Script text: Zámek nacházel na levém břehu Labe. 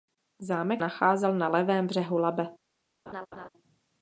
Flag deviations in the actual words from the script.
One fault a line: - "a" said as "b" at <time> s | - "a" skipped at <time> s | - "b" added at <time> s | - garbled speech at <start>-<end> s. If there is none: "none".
none